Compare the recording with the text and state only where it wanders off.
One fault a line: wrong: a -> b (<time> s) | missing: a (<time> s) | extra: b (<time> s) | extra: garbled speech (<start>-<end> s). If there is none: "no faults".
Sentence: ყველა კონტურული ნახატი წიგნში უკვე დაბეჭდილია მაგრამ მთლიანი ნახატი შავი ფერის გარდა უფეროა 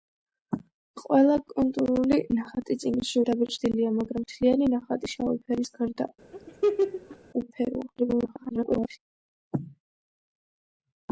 missing: უკვე (3.2 s)
extra: garbled speech (8.0-9.0 s)